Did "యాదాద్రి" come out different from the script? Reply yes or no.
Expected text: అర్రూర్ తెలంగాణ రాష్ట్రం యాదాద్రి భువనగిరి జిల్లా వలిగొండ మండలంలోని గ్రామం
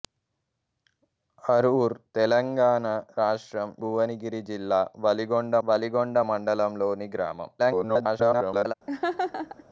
yes